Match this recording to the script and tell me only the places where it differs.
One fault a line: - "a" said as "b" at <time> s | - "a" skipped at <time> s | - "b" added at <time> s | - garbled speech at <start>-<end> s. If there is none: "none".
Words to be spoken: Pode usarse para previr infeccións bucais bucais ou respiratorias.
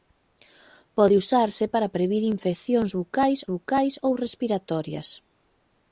none